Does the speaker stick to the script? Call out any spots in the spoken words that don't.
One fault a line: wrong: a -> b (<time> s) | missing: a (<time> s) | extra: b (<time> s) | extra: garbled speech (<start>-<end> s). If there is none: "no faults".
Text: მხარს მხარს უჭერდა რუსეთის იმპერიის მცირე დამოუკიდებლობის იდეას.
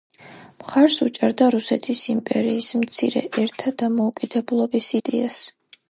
missing: მხარს (0.9 s)
extra: ერთა (3.4 s)